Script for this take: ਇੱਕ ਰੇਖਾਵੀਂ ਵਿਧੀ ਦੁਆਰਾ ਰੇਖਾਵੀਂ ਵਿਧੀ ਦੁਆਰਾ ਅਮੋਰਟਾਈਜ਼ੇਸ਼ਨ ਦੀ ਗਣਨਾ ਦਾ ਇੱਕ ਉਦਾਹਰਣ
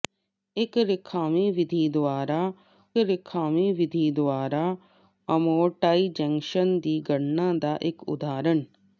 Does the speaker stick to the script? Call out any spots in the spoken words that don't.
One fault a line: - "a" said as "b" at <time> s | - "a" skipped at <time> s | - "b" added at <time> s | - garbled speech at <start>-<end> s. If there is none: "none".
none